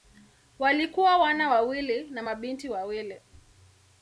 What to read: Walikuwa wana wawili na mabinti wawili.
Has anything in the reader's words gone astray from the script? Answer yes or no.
no